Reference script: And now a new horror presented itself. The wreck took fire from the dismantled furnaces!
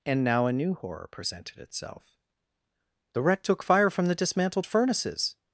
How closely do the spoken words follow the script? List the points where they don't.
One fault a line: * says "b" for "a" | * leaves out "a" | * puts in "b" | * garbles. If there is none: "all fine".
all fine